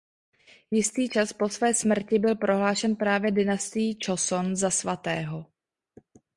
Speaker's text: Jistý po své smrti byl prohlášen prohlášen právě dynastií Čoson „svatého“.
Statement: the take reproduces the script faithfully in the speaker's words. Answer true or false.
false